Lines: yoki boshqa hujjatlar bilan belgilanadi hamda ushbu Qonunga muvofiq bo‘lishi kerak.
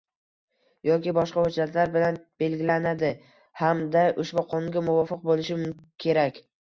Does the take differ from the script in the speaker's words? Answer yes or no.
no